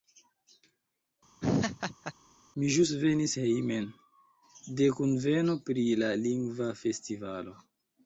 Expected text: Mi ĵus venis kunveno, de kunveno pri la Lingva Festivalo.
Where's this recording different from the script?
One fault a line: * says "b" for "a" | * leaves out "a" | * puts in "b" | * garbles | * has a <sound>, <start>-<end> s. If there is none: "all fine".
* has a laugh, 1.4-2.1 s
* says "hejmen" for "kunveno"